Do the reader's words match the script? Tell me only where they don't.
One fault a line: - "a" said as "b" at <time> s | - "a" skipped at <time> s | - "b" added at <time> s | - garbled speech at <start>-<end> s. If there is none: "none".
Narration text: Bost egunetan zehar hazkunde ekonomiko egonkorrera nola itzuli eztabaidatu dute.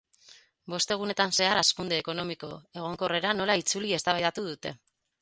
none